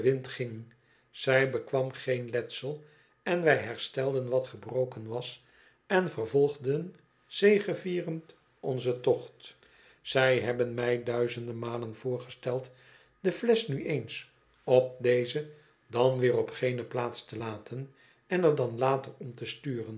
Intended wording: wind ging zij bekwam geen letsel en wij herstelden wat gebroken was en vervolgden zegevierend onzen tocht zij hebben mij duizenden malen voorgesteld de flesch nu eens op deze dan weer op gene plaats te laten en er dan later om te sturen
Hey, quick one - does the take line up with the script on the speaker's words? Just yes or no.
yes